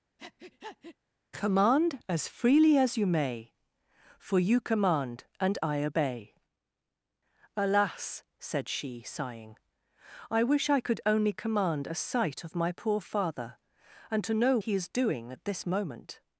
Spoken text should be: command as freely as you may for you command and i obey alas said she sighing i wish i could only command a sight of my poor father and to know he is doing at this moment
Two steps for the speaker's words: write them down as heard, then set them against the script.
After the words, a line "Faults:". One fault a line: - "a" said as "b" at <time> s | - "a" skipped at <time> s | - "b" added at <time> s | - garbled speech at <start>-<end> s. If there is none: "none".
command as freely as you may for you command and i obey alas said she sighing i wish i could only command a sight of my poor father and to know he is doing at this moment
Faults:
none